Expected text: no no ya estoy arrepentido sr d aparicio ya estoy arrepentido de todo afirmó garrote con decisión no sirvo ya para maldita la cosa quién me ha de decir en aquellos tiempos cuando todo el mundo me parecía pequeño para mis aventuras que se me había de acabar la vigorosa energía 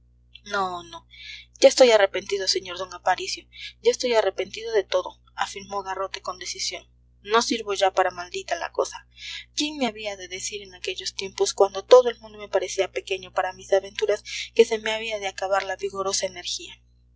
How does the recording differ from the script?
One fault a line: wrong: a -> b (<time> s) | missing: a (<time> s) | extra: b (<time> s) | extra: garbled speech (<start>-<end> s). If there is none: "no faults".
wrong: ha -> había (9.8 s)